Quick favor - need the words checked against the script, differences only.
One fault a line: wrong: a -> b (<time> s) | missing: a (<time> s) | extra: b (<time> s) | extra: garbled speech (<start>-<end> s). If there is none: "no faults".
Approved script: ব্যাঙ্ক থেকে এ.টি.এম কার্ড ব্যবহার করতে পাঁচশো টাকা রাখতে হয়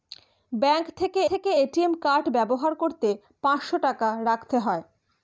extra: থেকে (1.3 s)